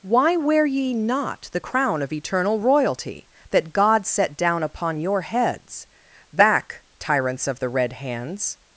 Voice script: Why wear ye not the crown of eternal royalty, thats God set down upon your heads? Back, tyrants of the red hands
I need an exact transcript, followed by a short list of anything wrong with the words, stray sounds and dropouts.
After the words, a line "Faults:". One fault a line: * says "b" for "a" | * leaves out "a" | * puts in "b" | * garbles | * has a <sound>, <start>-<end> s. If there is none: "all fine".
Why wear ye not the crown of eternal royalty, that God set down upon your heads? Back, tyrants of the red hands
Faults:
* says "that" for "thats"